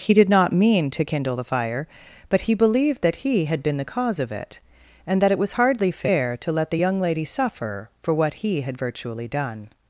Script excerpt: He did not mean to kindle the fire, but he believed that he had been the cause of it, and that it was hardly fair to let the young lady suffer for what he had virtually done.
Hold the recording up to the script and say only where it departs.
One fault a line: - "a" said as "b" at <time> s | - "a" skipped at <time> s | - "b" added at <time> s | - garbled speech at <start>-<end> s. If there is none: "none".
none